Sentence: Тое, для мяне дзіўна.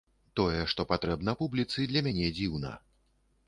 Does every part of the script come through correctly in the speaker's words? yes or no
no